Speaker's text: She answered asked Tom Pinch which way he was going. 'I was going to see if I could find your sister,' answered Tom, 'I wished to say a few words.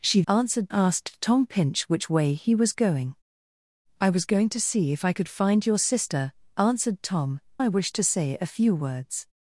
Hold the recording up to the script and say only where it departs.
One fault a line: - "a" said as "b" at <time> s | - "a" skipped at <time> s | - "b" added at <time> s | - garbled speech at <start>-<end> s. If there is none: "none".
none